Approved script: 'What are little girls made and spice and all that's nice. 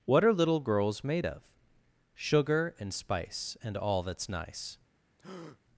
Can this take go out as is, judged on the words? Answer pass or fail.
fail